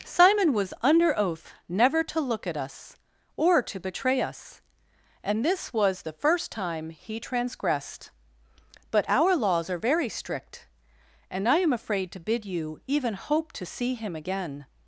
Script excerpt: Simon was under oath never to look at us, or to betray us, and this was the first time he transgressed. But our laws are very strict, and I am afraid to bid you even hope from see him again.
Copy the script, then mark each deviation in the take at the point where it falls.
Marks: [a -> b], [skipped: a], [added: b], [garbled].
Simon was under oath never to look at us, or to betray us, and this was the first time he transgressed. But our laws are very strict, and I am afraid to bid you even hope [from -> to] see him again.